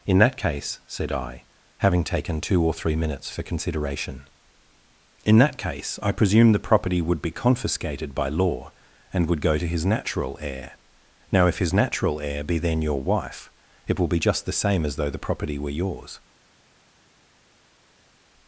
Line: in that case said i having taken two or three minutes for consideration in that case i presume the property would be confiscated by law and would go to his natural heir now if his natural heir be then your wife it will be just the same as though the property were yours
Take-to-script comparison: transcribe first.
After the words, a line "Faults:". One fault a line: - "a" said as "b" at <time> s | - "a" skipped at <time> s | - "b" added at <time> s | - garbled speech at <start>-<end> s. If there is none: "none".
in that case said i having taken two or three minutes for consideration in that case i presume the property would be confiscated by law and would go to his natural heir now if his natural heir be then your wife it will be just the same as though the property were yours
Faults:
none